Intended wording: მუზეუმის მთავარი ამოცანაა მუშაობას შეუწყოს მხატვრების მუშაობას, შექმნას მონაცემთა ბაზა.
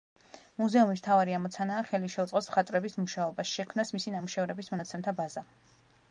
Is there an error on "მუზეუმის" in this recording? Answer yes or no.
no